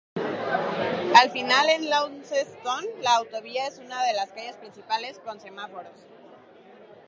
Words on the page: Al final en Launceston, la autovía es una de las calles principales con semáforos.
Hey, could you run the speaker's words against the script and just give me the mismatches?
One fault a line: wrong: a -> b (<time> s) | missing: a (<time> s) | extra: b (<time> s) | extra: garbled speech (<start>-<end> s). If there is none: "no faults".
no faults